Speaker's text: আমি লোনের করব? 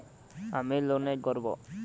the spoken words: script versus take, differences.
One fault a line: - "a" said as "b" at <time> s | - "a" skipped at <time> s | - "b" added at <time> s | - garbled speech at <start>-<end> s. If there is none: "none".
none